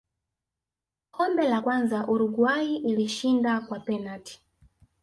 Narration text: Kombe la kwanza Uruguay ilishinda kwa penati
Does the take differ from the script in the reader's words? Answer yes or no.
no